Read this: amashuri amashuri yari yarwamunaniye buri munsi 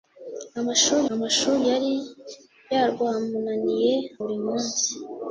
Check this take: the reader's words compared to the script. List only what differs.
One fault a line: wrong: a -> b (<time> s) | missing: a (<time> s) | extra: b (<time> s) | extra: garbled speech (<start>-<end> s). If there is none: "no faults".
no faults